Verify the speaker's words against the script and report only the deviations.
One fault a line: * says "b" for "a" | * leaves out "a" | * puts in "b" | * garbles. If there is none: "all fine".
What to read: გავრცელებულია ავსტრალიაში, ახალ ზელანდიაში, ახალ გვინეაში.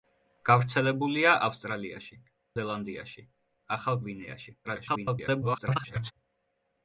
* leaves out "ახალ"
* garbles